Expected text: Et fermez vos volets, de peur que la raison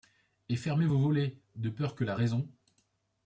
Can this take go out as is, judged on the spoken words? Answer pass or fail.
pass